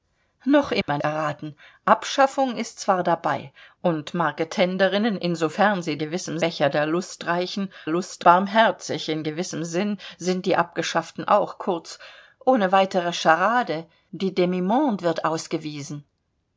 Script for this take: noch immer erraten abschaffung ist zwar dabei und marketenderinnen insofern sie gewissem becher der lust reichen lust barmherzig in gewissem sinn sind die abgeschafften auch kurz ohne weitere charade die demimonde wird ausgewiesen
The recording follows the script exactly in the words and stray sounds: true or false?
false